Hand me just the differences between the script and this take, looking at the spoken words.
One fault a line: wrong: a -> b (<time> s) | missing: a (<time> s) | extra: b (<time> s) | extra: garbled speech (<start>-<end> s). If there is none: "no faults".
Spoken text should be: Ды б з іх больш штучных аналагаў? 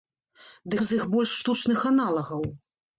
no faults